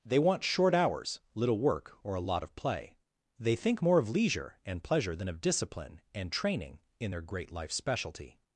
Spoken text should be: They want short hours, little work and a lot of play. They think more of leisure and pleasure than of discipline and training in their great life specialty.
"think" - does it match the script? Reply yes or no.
yes